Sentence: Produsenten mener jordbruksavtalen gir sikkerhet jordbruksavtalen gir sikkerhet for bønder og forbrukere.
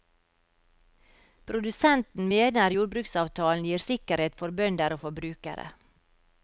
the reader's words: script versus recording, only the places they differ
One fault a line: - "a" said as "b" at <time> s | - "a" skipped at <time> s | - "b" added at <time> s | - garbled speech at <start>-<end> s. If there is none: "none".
- "jordbruksavtalen gir sikkerhet" skipped at 4.4 s